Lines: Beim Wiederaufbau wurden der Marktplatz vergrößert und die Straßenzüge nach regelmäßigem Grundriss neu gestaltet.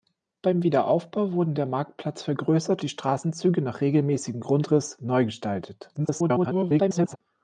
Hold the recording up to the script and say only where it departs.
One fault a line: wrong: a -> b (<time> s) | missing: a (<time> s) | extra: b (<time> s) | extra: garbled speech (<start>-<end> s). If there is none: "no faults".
missing: und (2.8 s)
extra: garbled speech (5.9-7.2 s)